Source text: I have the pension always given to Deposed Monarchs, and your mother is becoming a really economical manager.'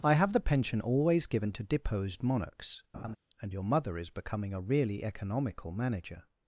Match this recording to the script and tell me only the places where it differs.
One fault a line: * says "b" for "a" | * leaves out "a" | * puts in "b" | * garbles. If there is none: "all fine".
all fine